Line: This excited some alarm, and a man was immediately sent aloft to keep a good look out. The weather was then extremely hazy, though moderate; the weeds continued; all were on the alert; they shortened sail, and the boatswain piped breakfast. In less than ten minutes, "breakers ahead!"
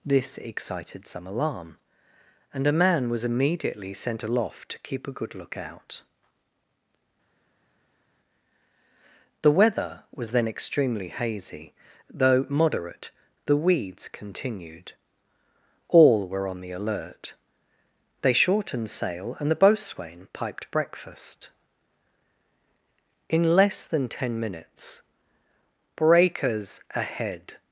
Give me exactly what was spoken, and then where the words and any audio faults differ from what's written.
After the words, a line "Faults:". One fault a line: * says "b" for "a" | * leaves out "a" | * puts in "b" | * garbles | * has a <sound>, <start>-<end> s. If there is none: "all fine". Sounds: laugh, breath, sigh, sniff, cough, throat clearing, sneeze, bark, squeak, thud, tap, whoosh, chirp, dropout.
This excited some alarm, and a man was immediately sent aloft to keep a good look out. The weather was then extremely hazy, though moderate; the weeds continued; all were on the alert; they shortened sail, and the boatswain piped breakfast. In less than ten minutes, "breakers ahead!"
Faults:
all fine